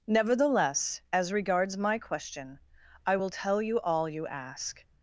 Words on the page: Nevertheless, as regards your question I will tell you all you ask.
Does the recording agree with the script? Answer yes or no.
no